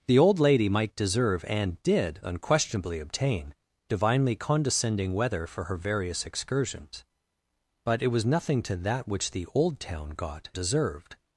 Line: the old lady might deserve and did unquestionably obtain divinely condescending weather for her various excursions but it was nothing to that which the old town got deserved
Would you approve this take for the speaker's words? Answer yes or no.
yes